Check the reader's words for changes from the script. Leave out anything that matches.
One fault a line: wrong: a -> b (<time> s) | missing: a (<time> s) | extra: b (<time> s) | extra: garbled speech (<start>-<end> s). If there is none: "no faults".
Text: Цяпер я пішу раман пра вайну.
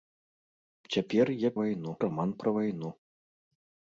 wrong: пішу -> вайну (1.6 s)